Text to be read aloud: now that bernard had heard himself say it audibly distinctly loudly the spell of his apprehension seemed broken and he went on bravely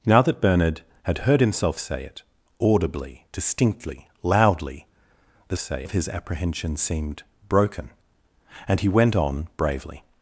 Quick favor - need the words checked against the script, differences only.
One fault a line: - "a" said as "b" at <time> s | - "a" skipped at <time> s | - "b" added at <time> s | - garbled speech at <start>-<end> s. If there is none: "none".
- "spell" said as "say" at 5.6 s